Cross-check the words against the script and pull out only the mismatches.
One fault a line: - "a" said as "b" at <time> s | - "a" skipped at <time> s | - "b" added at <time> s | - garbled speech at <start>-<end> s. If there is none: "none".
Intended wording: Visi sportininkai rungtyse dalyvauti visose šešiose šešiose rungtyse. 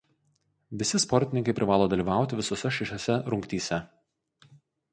- "rungtyse" said as "privalo" at 1.6 s
- "šešiose" skipped at 3.2 s